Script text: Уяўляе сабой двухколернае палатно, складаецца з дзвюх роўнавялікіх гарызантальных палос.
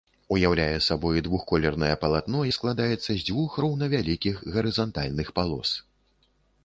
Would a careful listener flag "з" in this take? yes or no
no